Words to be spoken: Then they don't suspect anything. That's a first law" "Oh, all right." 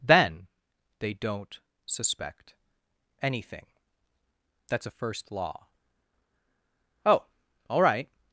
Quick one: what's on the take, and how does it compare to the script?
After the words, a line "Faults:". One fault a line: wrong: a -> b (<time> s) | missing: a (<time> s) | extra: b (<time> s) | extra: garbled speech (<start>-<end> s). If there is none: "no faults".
Then they don't suspect anything. That's a first law" "Oh, all right."
Faults:
no faults